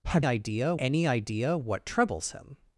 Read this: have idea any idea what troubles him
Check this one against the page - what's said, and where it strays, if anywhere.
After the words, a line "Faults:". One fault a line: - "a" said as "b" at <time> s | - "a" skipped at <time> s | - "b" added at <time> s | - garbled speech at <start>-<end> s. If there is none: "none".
have idea any idea what troubles him
Faults:
none